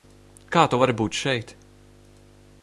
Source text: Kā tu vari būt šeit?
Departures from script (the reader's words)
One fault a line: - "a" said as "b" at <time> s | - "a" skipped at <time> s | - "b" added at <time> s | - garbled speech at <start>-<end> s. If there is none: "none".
none